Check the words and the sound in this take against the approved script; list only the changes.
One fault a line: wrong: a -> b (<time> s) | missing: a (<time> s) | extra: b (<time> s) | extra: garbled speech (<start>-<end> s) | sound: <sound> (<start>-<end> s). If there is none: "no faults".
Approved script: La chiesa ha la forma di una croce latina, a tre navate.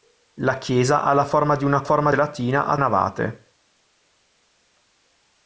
wrong: croce -> forma (1.8 s)
missing: tre (2.8 s)